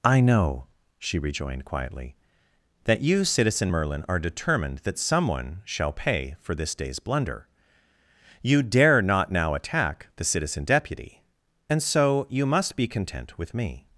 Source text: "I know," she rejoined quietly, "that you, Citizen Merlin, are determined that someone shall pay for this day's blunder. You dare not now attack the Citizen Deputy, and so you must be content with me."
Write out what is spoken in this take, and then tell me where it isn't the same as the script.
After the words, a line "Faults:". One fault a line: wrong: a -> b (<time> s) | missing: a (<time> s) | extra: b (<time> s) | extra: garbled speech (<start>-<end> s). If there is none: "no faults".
"I know," she rejoined quietly, "that you, Citizen Merlin, are determined that someone shall pay for this day's blunder. You dare not now attack the Citizen Deputy, and so you must be content with me."
Faults:
no faults